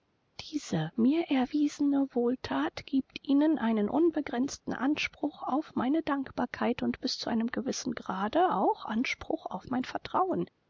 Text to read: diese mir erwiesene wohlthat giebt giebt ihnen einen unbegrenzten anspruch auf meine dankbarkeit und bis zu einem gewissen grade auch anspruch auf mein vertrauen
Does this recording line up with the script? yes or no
no